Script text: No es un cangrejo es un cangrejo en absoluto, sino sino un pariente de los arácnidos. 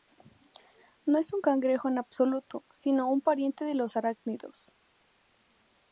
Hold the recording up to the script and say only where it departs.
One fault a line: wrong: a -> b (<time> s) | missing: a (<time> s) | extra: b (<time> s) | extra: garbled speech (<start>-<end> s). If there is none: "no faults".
missing: es un cangrejo (1.9 s)
missing: sino (3.1 s)